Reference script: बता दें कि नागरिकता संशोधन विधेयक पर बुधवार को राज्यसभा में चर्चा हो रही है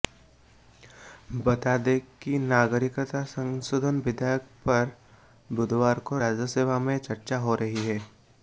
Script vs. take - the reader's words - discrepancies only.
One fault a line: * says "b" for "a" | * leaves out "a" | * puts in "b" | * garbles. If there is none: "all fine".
all fine